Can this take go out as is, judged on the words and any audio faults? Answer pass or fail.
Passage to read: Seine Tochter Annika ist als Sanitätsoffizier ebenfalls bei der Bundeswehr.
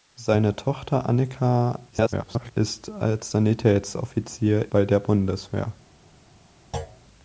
fail